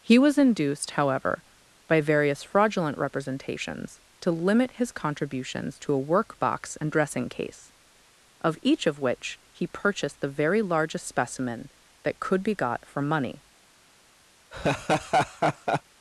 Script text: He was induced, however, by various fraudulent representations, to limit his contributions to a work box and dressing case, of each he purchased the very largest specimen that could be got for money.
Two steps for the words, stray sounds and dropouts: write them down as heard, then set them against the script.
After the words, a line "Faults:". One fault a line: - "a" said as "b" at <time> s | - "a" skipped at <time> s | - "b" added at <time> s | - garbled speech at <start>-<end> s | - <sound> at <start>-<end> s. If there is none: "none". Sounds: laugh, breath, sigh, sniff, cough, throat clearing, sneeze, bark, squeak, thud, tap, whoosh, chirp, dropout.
He was induced, however, by various fraudulent representations, to limit his contributions to a work box and dressing case, of each of which he purchased the very largest specimen that could be got for money.
Faults:
- "of which" added at 8.9 s
- laugh at 14.5-15.8 s